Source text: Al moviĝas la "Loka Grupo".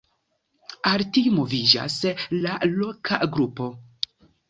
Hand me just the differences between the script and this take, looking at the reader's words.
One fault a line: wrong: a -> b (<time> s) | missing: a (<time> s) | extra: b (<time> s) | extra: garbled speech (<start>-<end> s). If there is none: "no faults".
extra: tiu (1.2 s)